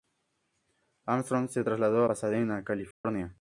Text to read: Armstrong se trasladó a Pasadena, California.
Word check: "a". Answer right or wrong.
wrong